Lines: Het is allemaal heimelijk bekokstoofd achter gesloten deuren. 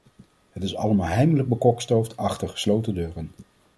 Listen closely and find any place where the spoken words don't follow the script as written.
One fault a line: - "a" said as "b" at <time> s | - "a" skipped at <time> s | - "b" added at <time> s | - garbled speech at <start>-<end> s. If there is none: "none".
none